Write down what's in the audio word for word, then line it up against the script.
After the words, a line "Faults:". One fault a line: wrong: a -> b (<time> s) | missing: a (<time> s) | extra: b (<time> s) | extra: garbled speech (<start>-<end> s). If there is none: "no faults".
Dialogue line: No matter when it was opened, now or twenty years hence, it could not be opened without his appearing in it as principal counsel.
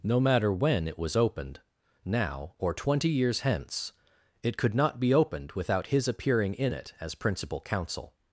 No matter when it was opened, now or twenty years hence, it could not be opened without his appearing in it as principal counsel.
Faults:
no faults